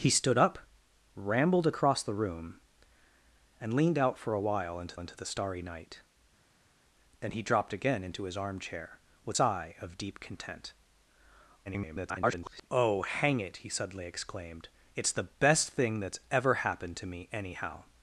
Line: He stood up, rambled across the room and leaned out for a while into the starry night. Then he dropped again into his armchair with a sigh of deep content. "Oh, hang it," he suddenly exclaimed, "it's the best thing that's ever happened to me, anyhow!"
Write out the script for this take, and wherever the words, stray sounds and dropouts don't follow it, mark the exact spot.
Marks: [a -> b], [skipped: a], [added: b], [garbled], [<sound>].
He stood up, rambled across the room and leaned out for a while into [added: into] the starry night. Then he dropped again into his armchair with [skipped: a] sigh of deep content. [garbled] "Oh, hang it," he suddenly exclaimed, "it's the best thing that's ever happened to me, anyhow!"